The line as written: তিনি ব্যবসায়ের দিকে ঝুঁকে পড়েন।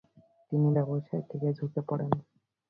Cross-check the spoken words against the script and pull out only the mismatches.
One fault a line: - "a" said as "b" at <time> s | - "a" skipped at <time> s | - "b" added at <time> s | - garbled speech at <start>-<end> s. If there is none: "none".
none